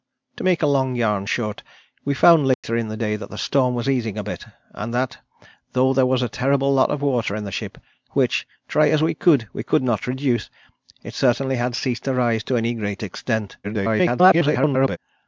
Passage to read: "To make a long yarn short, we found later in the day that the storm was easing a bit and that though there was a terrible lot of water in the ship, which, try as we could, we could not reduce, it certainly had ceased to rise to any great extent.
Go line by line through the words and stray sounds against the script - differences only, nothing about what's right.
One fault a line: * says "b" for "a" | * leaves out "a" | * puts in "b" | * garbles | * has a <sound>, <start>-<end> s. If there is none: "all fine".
* has a dropout, 2.5-2.6 s
* garbles